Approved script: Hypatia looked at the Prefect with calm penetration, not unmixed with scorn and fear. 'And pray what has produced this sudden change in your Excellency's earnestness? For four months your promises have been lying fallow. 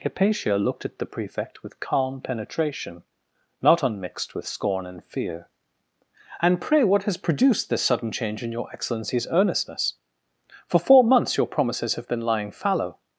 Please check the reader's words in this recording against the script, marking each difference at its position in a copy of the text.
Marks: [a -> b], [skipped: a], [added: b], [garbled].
Hypatia looked at the Prefect with calm penetration, not unmixed with scorn and fear. 'And pray what has produced this sudden change in your Excellency's earnestness? For four months your promises have been lying fallow.